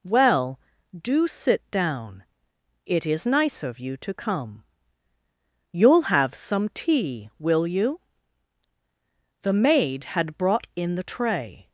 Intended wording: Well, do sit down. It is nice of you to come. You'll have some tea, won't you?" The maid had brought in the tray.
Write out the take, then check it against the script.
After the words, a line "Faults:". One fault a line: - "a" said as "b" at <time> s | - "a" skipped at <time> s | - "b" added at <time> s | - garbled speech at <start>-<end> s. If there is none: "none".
Well, do sit down. It is nice of you to come. You'll have some tea, will you?" The maid had brought in the tray.
Faults:
- "won't" said as "will" at 7.4 s